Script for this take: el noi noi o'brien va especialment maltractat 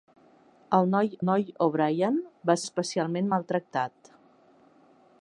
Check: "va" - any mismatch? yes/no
no